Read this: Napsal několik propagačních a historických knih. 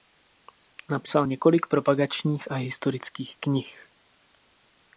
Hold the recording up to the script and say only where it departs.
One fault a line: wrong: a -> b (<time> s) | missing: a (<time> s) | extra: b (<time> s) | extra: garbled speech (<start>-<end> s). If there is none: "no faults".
no faults